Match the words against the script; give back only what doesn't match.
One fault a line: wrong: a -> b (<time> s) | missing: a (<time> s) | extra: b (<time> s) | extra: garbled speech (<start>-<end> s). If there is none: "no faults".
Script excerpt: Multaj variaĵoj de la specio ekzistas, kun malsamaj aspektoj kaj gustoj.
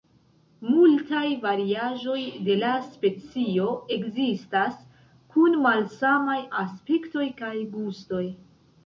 no faults